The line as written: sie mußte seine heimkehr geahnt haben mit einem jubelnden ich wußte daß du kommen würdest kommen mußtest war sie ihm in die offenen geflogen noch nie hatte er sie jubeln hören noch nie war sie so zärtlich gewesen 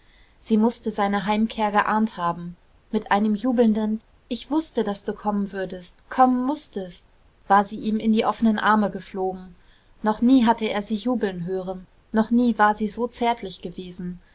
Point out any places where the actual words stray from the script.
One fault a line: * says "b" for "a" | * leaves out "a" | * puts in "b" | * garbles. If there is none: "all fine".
* puts in "arme"